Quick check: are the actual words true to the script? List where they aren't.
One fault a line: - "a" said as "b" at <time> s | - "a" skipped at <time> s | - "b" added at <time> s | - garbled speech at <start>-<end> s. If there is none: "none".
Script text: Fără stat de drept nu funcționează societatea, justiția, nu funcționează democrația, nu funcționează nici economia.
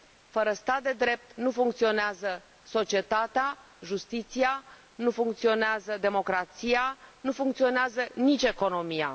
none